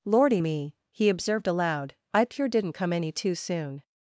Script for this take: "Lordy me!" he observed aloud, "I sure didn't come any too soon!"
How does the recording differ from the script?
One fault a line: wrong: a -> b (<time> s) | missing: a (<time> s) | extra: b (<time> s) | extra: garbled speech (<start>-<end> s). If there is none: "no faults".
wrong: sure -> pure (2.2 s)